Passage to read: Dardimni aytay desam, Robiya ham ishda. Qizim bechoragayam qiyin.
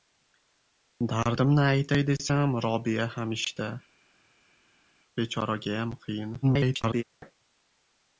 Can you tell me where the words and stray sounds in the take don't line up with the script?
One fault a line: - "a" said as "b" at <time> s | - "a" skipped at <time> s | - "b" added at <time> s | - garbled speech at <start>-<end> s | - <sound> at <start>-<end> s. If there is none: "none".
- "Qizim" skipped at 3.7 s
- garbled speech at 6.4-7.0 s